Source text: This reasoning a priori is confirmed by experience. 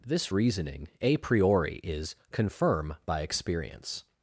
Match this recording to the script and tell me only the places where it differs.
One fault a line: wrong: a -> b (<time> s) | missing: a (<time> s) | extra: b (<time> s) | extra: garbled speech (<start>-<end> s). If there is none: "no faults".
wrong: confirmed -> confirm (2.3 s)